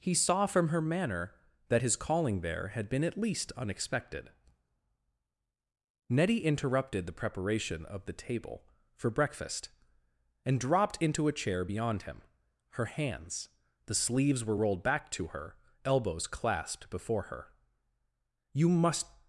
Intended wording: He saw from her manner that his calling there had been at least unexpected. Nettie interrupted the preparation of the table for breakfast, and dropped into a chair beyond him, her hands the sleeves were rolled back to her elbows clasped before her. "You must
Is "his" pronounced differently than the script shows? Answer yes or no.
no